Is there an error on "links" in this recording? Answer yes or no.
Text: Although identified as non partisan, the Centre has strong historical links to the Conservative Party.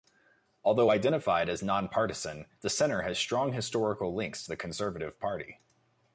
no